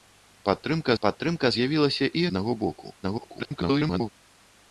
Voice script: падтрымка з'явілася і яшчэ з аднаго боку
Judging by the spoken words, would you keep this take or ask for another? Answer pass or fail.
fail